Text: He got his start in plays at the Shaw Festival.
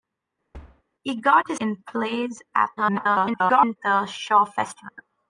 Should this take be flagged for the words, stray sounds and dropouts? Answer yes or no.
yes